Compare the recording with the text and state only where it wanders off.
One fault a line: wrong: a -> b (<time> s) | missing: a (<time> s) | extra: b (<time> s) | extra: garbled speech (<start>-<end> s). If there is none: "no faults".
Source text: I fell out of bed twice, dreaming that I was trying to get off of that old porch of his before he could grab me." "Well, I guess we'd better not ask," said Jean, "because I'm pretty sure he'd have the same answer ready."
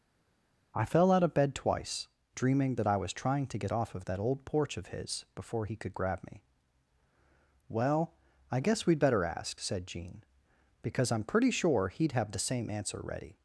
missing: not (9.2 s)